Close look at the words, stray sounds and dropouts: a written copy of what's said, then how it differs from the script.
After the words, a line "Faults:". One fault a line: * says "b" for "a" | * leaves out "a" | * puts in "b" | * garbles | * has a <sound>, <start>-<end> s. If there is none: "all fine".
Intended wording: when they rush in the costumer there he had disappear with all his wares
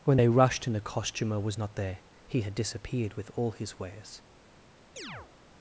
when they rushed in the costumer was not there he had disappeared with all his wares
Faults:
* says "rushed" for "rush"
* puts in "was not"
* says "disappeared" for "disappear"
* has a chirp, 5.0-5.3 s